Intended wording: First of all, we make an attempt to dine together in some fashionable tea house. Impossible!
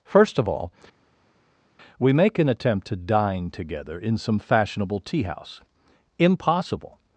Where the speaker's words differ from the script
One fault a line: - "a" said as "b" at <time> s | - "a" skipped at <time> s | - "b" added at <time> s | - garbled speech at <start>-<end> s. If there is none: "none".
none